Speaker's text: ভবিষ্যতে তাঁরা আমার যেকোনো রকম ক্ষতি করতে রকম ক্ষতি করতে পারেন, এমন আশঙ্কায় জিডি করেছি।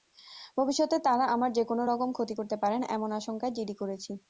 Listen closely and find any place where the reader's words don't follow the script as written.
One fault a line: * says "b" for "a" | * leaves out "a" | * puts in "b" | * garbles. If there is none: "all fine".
* leaves out "রকম ক্ষতি করতে"